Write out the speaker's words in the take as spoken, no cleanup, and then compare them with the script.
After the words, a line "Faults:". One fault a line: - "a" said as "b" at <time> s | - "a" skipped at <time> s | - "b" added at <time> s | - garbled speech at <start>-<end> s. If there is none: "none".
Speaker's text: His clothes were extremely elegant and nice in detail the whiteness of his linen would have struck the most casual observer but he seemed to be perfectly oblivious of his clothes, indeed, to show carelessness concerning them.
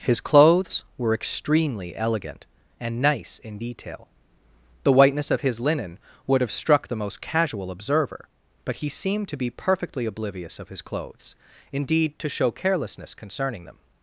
His clothes were extremely elegant and nice in detail the whiteness of his linen would have struck the most casual observer but he seemed to be perfectly oblivious of his clothes, indeed, to show carelessness concerning them.
Faults:
none